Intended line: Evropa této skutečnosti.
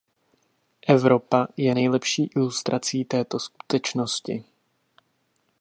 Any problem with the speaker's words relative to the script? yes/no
yes